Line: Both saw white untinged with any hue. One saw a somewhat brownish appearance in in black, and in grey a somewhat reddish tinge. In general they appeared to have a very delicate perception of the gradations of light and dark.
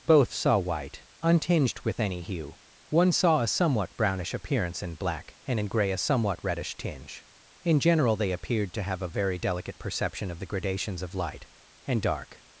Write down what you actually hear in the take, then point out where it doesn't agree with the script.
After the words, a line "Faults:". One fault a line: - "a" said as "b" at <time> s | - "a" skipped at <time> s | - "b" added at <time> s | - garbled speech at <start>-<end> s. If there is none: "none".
Both saw white untinged with any hue. One saw a somewhat brownish appearance in black, and in grey a somewhat reddish tinge. In general they appeared to have a very delicate perception of the gradations of light and dark.
Faults:
- "in" skipped at 5.0 s